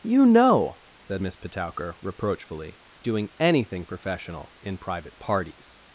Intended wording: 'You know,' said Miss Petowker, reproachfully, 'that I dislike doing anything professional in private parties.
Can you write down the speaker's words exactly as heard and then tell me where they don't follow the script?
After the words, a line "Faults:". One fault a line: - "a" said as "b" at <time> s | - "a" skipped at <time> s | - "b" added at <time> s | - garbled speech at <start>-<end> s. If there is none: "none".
'You know,' said Miss Petowker, reproachfully, 'doing anything professional in private parties.
Faults:
- "that I dislike" skipped at 2.8 s